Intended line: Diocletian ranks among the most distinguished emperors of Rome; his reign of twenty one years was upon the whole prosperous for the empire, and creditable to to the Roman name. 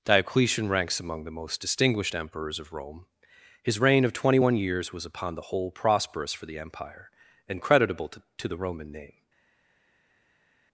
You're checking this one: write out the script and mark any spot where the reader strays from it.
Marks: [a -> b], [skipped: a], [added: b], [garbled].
Diocletian ranks among the most distinguished emperors of Rome; his reign of twenty one years was upon the whole prosperous for the empire, and creditable to to the Roman name.